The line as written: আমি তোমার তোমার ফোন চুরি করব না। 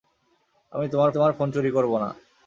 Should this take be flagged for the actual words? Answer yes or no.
no